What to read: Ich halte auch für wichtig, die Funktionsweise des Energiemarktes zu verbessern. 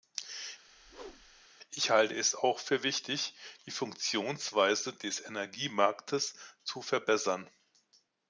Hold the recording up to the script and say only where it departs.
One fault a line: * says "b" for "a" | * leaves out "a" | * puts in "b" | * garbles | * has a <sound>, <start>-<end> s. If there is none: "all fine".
* has a whoosh, 0.7-1.5 s
* puts in "es"